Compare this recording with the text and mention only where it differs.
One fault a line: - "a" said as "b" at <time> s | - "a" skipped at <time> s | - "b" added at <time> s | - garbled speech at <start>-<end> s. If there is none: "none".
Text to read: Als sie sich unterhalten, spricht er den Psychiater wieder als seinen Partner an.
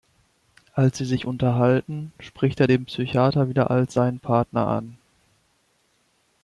none